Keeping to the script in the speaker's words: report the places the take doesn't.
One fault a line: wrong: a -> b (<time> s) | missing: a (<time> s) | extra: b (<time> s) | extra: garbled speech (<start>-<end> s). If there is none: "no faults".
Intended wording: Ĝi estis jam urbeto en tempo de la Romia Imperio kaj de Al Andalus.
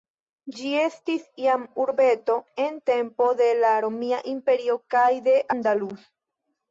missing: Al (5.4 s)